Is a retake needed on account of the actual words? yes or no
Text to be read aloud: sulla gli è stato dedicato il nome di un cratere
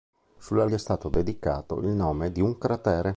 no